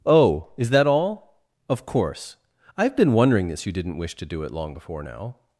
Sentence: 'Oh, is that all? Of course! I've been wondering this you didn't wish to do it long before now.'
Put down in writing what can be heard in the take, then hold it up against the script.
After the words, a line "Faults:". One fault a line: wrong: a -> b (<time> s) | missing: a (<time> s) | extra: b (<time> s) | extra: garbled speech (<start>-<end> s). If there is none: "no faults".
'Oh, is that all? Of course! I've been wondering this you didn't wish to do it long before now.'
Faults:
no faults